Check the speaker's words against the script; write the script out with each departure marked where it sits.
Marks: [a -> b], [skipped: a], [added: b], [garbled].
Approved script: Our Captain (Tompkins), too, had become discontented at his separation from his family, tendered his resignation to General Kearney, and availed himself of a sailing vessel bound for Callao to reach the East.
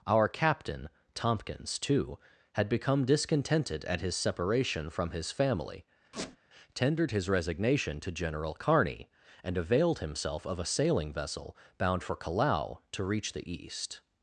Our Captain (Tompkins), too, had become discontented at his separation from his family, tendered his resignation to General Kearney, and availed himself of a sailing vessel bound for Callao to reach the East.